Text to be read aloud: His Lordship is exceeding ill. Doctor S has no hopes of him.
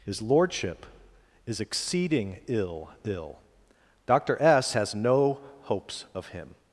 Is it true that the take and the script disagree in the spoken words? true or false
true